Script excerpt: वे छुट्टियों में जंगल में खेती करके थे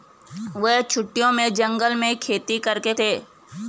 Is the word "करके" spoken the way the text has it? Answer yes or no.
yes